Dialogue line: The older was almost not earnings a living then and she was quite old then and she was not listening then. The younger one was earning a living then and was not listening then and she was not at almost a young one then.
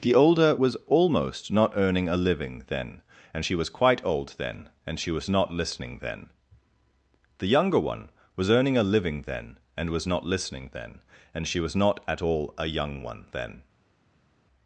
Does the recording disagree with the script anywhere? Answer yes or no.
yes